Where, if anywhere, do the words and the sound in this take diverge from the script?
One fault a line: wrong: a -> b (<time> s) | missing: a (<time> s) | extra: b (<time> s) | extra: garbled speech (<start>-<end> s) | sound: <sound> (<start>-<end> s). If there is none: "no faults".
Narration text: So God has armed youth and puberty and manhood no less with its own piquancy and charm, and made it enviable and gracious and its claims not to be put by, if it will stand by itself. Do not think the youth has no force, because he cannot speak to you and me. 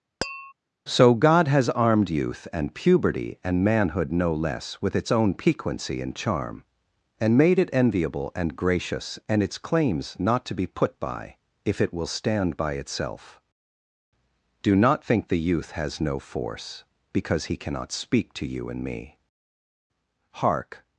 sound: tap (0.2-0.5 s)
extra: Hark (20.3 s)